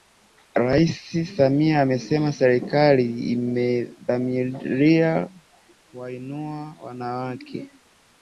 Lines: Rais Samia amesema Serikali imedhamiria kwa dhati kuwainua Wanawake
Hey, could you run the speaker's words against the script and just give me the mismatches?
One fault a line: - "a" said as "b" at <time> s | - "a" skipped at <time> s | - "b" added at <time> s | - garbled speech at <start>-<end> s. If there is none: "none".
- "kwa dhati" skipped at 5.3 s